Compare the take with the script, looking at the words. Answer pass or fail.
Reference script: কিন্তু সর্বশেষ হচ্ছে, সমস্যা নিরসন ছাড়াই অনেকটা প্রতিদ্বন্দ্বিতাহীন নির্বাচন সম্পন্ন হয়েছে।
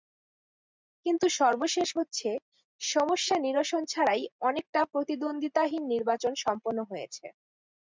pass